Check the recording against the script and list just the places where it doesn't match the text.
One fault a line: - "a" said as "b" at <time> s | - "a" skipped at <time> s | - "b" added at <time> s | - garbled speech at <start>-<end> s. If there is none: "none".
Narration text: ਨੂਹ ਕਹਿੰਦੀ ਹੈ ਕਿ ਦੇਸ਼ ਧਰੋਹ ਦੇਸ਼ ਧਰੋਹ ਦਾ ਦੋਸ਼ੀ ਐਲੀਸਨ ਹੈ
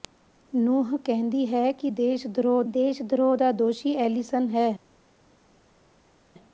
none